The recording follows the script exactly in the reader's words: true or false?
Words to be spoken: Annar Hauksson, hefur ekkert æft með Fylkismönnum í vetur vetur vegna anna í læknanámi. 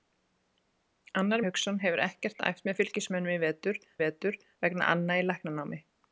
true